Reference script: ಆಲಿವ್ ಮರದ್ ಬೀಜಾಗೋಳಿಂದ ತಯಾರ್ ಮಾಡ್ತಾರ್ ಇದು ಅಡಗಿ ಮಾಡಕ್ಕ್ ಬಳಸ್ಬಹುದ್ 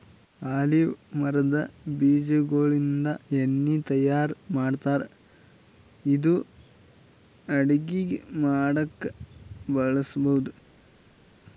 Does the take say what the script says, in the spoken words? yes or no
no